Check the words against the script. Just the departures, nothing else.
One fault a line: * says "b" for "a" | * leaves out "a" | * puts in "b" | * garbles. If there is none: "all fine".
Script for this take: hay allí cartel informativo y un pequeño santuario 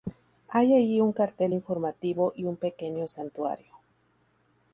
* puts in "un"